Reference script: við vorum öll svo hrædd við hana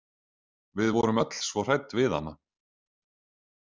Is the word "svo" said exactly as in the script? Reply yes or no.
yes